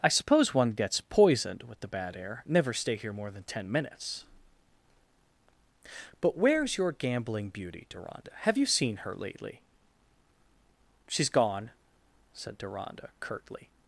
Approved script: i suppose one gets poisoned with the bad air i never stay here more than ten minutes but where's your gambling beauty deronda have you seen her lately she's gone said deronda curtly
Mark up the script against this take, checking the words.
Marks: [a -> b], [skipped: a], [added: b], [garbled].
i suppose one gets poisoned with the bad air [skipped: i] never stay here more than ten minutes but where's your gambling beauty deronda have you seen her lately she's gone said deronda curtly